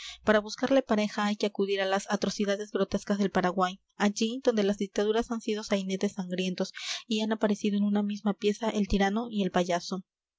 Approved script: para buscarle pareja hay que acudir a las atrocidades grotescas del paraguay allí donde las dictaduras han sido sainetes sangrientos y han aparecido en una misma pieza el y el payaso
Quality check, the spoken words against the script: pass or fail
fail